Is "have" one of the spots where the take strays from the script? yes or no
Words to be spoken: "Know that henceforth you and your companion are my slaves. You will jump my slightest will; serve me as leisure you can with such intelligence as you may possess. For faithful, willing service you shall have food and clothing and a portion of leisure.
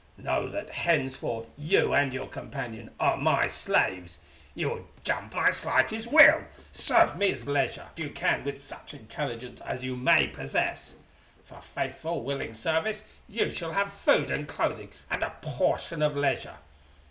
no